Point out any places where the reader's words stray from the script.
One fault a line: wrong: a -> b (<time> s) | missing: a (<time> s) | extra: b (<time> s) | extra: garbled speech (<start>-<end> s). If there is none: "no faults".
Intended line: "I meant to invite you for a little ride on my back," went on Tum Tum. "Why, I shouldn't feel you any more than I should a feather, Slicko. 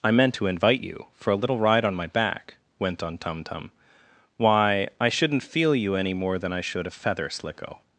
no faults